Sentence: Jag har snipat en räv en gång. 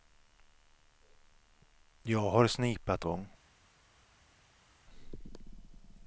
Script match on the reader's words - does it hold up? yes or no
no